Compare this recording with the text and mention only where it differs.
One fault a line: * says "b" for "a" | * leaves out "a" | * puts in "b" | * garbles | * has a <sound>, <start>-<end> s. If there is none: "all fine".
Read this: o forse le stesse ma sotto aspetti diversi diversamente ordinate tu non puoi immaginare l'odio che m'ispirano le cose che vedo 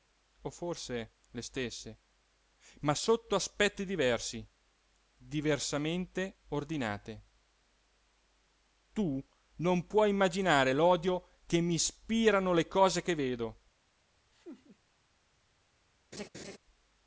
* has a laugh, 14.3-14.8 s
* has a laugh, 16.1-16.6 s